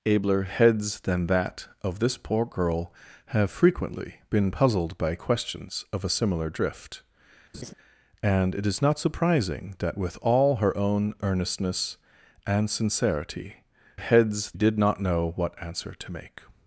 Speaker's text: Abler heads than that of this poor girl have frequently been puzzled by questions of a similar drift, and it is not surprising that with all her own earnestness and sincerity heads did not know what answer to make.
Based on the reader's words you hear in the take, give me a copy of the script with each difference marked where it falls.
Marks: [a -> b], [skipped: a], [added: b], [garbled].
Abler heads than that of this poor girl have frequently been puzzled by questions of a similar drift, and it is not surprising that with all her own earnestness and sincerity heads did not know what answer to make.